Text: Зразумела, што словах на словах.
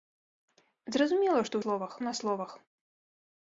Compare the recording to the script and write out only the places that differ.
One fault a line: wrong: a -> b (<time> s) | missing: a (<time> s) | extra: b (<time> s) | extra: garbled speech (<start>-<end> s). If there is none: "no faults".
no faults